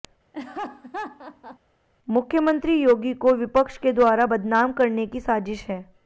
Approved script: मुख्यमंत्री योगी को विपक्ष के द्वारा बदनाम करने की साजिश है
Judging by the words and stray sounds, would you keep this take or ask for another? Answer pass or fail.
fail